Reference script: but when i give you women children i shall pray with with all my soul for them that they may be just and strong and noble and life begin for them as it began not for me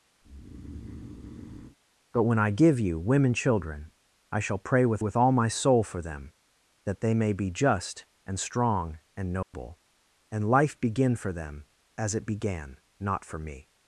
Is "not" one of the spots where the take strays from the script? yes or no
no